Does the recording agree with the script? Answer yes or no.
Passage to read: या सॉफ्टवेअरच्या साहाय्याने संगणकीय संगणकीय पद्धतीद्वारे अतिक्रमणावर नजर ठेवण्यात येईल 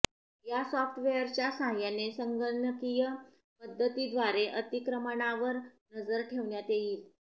no